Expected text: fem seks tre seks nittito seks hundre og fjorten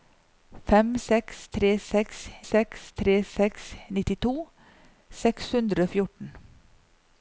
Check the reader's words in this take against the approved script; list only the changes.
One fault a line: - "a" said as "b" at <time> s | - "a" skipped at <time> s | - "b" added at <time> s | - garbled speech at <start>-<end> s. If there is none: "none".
- "seks tre seks" added at 2.5 s